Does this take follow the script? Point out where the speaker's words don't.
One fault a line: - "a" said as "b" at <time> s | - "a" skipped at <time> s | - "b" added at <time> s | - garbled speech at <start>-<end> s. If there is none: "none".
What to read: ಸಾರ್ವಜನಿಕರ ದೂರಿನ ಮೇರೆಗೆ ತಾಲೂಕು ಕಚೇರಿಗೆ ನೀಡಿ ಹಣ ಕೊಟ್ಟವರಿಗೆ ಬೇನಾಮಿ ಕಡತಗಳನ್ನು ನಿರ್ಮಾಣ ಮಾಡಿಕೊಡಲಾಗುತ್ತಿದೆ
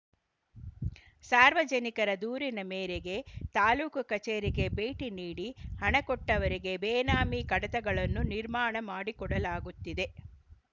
- "ಭೇಟಿ" added at 4.8 s